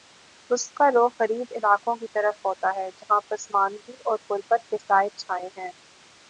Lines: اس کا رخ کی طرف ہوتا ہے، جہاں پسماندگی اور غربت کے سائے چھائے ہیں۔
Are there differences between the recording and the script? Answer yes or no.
yes